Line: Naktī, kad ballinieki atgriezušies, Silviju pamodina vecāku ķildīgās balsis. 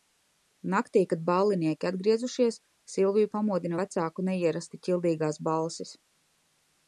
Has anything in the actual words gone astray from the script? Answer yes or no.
yes